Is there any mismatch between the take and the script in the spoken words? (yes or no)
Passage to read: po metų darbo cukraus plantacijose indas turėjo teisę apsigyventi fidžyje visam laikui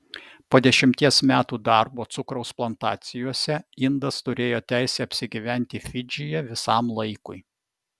yes